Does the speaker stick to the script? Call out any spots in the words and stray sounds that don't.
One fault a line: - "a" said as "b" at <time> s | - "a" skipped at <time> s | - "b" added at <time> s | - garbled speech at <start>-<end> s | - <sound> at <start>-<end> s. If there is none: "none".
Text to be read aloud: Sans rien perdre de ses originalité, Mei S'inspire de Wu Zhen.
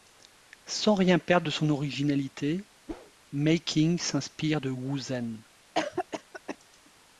- "ses" said as "son" at 1.5 s
- whoosh at 2.9-3.1 s
- "Qing" added at 3.6 s
- cough at 5.7-6.6 s